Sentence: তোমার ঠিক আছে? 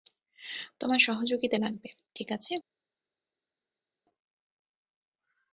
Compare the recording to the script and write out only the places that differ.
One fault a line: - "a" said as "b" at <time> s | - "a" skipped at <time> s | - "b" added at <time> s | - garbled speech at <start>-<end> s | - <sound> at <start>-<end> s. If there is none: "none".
- "সহযোগিতা লাগবে" added at 1.0 s